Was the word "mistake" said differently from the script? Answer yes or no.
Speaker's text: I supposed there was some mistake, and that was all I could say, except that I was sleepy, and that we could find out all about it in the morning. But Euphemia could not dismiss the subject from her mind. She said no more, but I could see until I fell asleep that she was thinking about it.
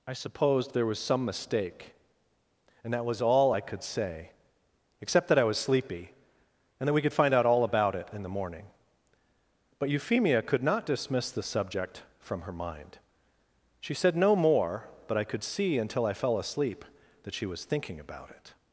no